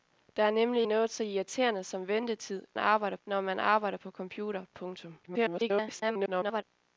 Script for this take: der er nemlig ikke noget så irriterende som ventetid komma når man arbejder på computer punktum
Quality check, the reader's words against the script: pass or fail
fail